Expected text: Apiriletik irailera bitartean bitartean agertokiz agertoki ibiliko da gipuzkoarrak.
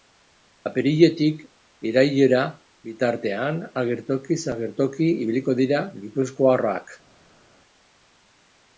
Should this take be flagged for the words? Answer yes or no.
yes